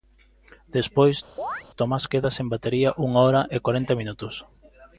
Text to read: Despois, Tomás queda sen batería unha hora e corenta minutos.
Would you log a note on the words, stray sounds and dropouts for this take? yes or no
yes